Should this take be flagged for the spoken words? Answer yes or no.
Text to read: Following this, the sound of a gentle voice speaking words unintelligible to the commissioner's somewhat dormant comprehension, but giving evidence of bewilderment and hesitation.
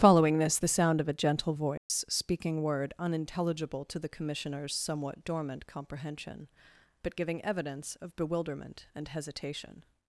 yes